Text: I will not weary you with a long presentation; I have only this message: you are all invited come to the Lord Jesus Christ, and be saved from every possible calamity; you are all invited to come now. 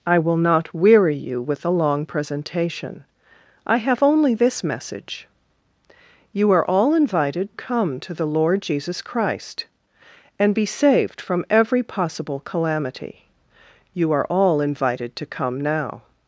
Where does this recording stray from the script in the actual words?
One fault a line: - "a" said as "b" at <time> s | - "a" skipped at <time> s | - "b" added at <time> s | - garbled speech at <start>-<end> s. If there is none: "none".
none